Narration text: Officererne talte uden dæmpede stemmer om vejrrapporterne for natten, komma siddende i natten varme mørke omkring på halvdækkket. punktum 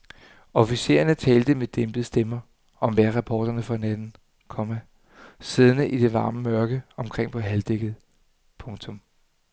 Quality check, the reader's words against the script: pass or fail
fail